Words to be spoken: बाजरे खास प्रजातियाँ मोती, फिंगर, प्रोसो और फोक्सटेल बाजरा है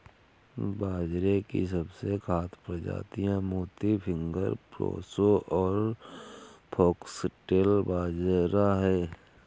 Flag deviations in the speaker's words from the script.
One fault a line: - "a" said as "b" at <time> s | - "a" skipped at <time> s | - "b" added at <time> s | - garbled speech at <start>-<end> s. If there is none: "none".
- "की सबसे" added at 1.4 s